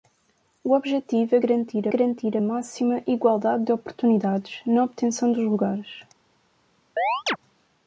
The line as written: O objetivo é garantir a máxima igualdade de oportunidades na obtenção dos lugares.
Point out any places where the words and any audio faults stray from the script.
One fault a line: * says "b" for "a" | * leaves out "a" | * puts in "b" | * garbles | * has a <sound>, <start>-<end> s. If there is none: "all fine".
* puts in "garantir"
* has a chirp, 7.0-7.4 s